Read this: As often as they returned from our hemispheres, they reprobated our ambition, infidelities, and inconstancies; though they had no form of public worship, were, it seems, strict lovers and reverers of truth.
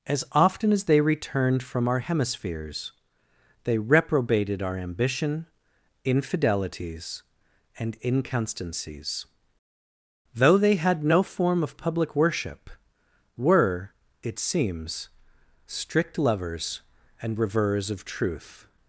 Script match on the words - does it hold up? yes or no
yes